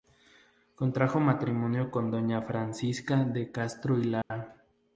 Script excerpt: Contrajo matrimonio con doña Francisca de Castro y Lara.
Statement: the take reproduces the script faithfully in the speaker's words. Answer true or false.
true